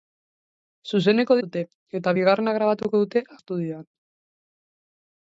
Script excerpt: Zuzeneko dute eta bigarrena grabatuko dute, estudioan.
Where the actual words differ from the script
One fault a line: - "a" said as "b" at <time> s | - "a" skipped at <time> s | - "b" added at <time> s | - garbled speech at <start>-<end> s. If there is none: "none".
none